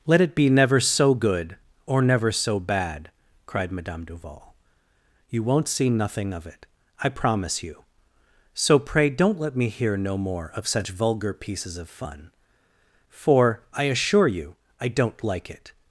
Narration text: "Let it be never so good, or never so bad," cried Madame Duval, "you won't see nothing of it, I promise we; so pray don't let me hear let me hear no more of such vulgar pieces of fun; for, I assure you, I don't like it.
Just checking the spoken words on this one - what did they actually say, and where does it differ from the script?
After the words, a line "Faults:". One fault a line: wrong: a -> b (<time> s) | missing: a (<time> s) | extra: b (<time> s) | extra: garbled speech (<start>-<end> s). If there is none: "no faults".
"Let it be never so good, or never so bad," cried Madame Duval, "you won't see nothing of it, I promise you; so pray don't let me hear no more of such vulgar pieces of fun; for, I assure you, I don't like it.
Faults:
wrong: we -> you (7.6 s)
missing: let me hear (10.0 s)